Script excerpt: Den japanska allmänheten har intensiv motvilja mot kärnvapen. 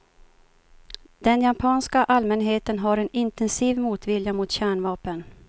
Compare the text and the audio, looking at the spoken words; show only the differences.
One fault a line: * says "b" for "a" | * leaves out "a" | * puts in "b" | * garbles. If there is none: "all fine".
* puts in "en"